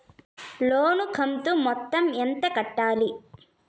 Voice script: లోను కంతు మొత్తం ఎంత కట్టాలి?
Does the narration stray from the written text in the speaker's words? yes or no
no